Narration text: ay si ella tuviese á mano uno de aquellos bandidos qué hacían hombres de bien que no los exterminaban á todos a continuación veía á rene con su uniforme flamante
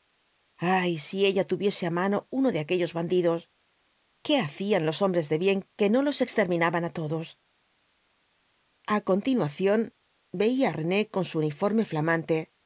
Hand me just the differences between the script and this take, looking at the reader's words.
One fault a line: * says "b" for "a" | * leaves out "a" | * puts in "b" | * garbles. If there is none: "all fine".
* puts in "los"